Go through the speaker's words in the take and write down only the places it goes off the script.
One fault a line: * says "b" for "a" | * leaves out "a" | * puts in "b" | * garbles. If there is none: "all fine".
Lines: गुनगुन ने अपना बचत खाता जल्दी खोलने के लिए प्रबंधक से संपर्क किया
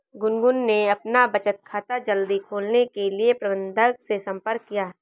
all fine